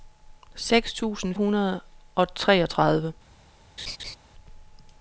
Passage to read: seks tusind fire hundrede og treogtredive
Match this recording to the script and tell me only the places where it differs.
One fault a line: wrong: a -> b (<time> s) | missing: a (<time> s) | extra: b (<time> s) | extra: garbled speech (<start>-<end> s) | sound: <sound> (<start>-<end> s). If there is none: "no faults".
missing: fire (1.4 s)
sound: laugh (3.8-4.2 s)